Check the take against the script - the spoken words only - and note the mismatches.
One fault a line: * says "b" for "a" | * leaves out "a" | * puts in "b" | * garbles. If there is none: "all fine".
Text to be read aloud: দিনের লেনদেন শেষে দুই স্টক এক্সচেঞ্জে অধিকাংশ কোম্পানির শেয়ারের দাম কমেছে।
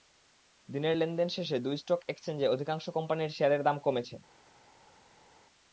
all fine